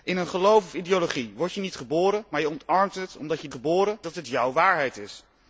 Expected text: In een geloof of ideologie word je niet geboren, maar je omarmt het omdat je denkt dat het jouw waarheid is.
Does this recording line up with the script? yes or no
no